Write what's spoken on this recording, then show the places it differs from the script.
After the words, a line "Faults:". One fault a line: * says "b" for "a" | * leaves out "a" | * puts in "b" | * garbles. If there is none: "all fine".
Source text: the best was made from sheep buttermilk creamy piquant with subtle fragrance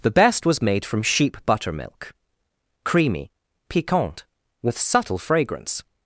the best was made from sheep buttermilk creamy piquant with subtle fragrance
Faults:
all fine